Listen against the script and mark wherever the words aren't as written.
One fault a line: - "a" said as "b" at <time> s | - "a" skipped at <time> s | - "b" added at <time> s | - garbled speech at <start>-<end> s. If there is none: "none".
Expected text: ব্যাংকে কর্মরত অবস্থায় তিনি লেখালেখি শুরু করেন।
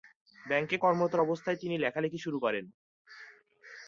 none